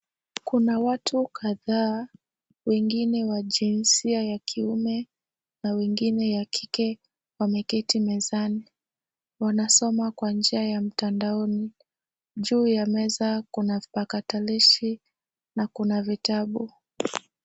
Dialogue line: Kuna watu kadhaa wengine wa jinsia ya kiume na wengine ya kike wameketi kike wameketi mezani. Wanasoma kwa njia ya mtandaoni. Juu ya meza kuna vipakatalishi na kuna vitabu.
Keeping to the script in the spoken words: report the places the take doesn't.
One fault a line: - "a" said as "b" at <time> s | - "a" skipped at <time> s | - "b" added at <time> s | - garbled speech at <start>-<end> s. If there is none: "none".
- "kike wameketi" skipped at 8.0 s